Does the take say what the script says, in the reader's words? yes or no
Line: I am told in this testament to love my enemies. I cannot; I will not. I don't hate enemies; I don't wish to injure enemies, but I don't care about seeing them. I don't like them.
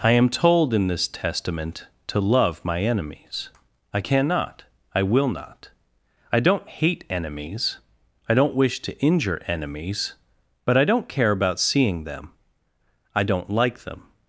yes